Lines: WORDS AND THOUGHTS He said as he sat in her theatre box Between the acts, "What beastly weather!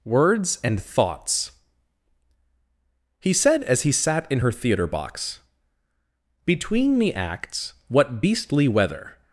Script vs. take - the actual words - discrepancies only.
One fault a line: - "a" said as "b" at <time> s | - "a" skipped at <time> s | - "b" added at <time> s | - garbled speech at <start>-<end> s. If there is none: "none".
none